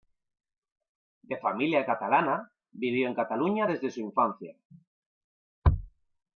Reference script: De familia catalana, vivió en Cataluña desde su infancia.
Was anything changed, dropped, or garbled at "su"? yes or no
no